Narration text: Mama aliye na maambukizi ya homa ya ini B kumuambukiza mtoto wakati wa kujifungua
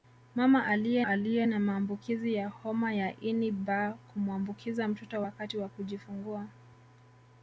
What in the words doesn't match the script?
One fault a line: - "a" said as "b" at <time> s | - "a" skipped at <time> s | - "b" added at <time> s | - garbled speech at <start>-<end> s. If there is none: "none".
- "aliye" added at 1.1 s